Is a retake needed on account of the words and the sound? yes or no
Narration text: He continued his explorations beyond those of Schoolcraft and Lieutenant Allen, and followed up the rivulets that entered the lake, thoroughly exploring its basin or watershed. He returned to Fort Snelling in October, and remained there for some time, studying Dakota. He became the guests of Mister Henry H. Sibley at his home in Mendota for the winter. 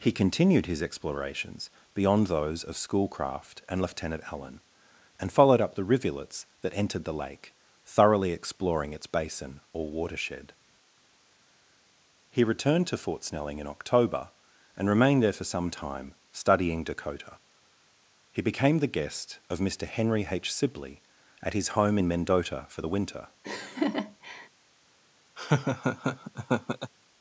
yes